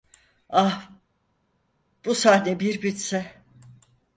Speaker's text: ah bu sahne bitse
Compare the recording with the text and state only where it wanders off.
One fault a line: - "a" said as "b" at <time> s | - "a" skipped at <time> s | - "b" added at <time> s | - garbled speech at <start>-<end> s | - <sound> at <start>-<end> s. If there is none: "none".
- "bir" added at 2.6 s